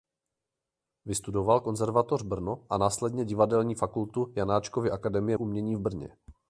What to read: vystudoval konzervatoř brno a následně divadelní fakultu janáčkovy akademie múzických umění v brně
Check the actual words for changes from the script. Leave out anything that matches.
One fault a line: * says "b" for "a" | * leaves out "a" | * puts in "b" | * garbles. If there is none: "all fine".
* leaves out "múzických"